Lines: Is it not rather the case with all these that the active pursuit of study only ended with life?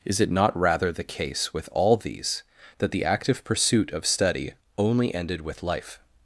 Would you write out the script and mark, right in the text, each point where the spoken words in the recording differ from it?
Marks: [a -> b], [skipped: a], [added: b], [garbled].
Is it not rather the case with all these that the active pursuit of study only ended with life?